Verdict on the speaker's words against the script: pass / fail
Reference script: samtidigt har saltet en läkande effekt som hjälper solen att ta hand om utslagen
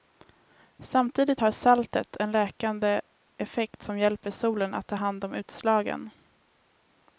pass